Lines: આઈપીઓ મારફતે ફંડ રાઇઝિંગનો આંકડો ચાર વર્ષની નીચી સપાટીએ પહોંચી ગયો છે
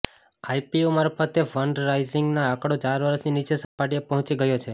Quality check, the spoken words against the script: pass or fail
pass